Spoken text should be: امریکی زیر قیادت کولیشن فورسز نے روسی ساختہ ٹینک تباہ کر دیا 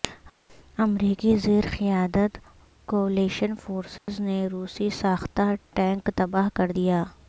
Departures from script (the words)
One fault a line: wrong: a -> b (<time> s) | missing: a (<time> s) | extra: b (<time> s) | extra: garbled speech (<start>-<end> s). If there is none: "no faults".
no faults